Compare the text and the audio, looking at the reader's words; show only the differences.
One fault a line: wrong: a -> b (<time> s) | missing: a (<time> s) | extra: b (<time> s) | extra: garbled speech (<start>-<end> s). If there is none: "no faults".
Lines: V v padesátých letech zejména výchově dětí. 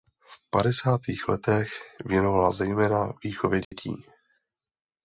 missing: v (0.5 s)
extra: věnovala (2.0 s)